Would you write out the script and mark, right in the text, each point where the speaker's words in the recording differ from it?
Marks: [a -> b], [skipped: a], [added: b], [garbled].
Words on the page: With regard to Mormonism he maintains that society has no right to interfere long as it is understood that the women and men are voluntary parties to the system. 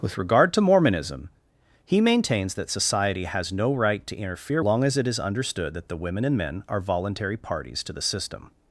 With regard to Mormonism he maintains that society has no right to interfere long as it is understood that the women and men are voluntary parties to the system.